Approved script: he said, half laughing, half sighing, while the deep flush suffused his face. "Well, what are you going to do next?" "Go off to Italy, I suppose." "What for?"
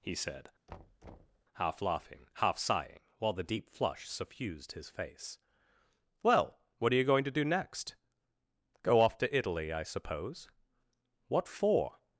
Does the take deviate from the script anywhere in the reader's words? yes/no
no